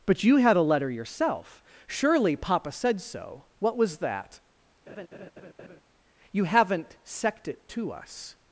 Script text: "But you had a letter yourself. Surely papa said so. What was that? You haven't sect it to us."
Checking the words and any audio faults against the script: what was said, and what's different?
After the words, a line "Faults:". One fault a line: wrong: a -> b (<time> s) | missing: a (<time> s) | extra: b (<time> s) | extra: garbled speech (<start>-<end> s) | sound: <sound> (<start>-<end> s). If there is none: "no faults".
"But you had a letter yourself. Surely papa said so. What was that? You haven't sect it to us."
Faults:
sound: laugh (4.9-5.8 s)